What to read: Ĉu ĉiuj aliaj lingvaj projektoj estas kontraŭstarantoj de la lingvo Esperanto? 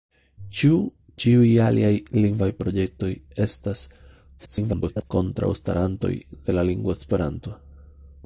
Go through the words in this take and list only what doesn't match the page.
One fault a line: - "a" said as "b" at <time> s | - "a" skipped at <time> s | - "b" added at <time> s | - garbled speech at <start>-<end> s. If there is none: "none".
- garbled speech at 4.4-5.1 s